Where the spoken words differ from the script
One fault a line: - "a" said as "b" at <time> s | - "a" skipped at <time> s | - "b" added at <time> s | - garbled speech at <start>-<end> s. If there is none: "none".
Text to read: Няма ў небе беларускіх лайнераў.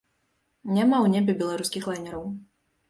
none